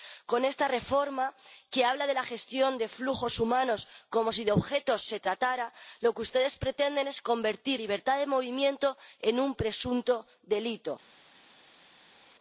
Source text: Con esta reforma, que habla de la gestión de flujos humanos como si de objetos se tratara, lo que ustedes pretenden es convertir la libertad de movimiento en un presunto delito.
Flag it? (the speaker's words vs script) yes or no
yes